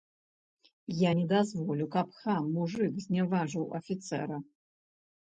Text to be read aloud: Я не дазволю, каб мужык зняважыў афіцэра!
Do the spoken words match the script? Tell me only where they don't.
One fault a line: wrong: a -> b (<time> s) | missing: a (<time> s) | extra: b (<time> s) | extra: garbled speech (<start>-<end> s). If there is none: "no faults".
extra: хам (2.2 s)